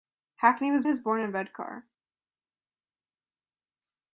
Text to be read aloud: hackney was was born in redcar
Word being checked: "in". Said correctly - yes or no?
yes